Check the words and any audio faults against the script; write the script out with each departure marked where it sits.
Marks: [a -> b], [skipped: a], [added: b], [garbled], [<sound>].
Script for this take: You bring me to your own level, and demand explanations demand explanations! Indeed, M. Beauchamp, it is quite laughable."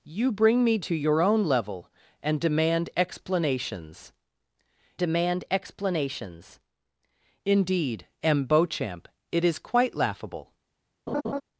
You bring me to your own level, and demand explanations demand explanations! Indeed, M. Beauchamp, it is quite laughable." [laugh]